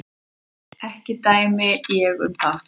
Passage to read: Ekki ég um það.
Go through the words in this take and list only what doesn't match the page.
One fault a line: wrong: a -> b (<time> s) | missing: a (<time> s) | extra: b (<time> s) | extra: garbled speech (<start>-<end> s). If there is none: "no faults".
extra: dæmi (1.3 s)